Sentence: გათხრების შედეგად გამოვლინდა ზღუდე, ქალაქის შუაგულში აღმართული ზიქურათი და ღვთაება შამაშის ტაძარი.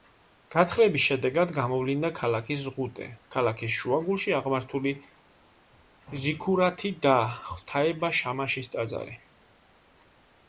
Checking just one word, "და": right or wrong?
right